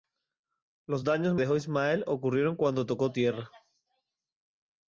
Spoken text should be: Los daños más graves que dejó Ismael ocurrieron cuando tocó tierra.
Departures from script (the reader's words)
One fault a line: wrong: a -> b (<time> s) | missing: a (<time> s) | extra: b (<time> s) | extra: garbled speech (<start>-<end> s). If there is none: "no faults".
missing: más graves que (1.4 s)